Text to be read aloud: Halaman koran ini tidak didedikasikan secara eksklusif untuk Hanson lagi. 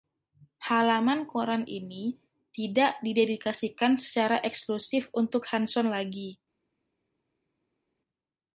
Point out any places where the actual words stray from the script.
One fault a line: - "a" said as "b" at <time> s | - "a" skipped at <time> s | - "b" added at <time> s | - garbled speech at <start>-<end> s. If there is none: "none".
none